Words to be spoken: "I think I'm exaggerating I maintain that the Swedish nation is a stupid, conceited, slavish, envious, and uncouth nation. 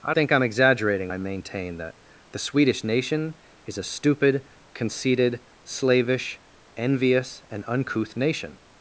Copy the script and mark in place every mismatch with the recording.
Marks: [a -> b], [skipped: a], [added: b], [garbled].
"I think I'm exaggerating I maintain that the Swedish nation is a stupid, conceited, slavish, envious, and uncouth nation.